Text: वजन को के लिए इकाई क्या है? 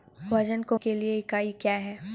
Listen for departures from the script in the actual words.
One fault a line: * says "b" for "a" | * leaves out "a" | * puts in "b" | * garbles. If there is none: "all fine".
all fine